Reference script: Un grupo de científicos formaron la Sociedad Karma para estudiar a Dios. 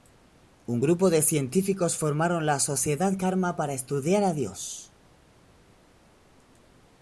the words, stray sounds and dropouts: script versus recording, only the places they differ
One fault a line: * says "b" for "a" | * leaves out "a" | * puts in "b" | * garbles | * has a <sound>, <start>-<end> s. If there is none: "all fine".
all fine